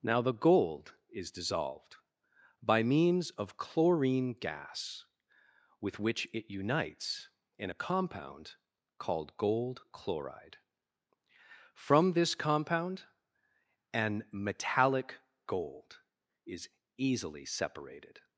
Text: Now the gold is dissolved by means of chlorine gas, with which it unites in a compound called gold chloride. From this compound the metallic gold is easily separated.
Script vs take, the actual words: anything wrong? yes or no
yes